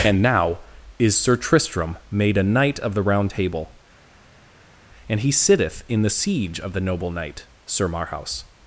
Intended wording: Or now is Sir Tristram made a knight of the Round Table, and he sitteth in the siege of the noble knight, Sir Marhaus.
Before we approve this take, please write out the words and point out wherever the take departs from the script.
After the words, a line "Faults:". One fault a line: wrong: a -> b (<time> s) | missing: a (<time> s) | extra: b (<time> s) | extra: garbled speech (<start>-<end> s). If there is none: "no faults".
And now is Sir Tristram made a knight of the Round Table, and he sitteth in the siege of the noble knight, Sir Marhaus.
Faults:
wrong: Or -> And (0.0 s)